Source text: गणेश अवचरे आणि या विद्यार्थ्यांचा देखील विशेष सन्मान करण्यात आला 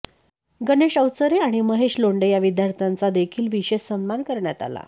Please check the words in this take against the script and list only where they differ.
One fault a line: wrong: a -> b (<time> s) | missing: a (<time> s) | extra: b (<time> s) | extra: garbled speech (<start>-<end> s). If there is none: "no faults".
extra: महेश लोंढे (1.6 s)